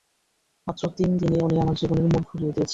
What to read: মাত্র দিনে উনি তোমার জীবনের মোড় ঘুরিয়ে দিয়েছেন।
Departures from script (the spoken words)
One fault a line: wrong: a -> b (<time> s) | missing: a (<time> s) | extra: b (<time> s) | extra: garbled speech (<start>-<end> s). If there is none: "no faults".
extra: তিন (1.0 s)
wrong: তোমার -> আমার (1.6 s)